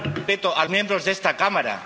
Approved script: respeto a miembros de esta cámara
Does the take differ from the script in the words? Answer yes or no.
no